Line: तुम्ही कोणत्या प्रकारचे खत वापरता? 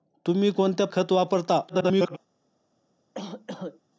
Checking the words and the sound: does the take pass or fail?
fail